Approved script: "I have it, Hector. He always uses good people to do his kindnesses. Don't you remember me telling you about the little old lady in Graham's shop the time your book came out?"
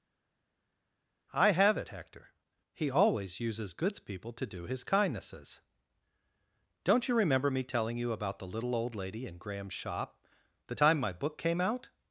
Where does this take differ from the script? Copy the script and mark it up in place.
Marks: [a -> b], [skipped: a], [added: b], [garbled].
"I have it, Hector. He always uses [good -> goods] people to do his kindnesses. Don't you remember me telling you about the little old lady in Graham's shop the time [your -> my] book came out?"